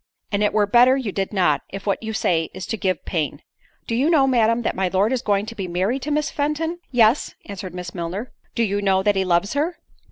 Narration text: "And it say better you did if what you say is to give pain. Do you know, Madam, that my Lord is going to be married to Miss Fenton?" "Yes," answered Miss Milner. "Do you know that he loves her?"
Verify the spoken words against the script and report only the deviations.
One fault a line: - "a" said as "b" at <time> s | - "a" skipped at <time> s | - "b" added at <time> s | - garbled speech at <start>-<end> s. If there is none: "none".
- "say" said as "were" at 0.5 s
- "not" added at 1.3 s